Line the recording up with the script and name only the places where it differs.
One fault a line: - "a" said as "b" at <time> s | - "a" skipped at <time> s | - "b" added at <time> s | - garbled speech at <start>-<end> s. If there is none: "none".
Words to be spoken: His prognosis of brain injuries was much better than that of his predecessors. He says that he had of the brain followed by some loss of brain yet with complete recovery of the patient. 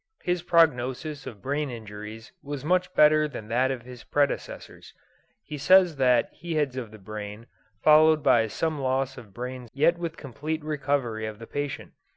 none